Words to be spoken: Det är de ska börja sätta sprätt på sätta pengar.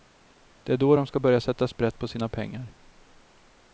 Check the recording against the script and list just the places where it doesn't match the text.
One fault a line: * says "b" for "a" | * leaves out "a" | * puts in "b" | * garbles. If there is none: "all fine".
* puts in "då"
* says "sina" for "sätta"